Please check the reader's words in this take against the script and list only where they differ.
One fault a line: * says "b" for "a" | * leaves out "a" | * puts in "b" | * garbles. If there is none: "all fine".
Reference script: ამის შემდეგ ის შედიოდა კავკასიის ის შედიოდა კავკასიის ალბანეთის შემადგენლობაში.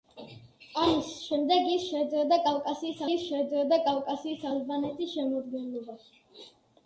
all fine